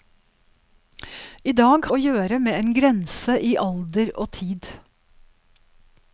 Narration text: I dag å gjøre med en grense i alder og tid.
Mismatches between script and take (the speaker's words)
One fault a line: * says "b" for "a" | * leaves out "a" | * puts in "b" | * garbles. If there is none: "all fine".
all fine